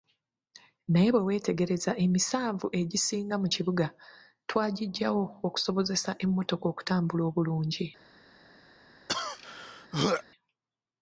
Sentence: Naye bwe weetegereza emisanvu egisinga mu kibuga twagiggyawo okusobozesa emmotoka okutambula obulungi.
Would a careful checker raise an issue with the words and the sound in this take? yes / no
yes